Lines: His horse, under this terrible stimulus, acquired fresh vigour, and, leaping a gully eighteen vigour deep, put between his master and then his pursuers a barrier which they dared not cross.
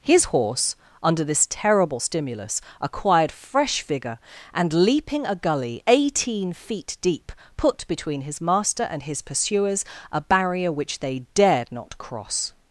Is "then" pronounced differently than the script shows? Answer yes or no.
yes